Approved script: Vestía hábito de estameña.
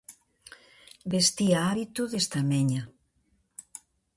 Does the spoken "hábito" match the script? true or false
true